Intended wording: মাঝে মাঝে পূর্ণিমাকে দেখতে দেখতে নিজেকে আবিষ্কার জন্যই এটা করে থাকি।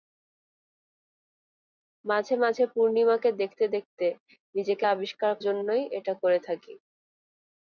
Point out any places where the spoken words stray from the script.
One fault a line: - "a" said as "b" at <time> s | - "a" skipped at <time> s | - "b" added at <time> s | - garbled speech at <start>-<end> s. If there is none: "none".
none